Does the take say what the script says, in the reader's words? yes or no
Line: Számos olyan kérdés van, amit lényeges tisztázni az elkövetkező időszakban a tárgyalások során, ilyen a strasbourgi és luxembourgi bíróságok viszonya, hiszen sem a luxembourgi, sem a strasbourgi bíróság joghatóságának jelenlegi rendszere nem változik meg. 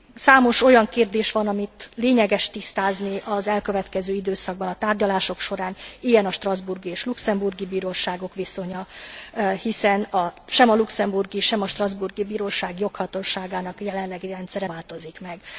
no